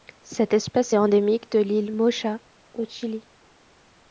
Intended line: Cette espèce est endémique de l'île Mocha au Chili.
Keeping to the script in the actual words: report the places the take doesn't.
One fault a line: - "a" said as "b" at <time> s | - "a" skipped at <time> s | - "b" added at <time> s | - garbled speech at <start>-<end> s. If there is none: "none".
none